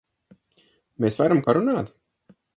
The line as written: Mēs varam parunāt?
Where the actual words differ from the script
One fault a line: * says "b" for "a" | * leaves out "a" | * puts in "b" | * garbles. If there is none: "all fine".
all fine